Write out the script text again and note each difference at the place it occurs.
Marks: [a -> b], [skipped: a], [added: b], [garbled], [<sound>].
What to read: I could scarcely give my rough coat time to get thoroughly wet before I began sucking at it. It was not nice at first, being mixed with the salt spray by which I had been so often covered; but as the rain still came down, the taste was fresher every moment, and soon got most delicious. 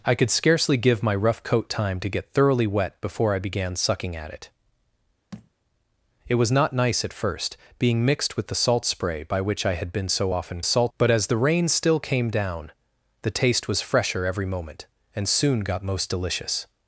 I could scarcely give my rough coat time to get thoroughly wet before I began sucking at it. [thud] It was not nice at first, being mixed with the salt spray by which I had been so often [covered; -> salt] but as the rain still came down, the taste was fresher every moment, and soon got most delicious.